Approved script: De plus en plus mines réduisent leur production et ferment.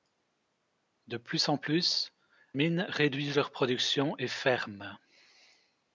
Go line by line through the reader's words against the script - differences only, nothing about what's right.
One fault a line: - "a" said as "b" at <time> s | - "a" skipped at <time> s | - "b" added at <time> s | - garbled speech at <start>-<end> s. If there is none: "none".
none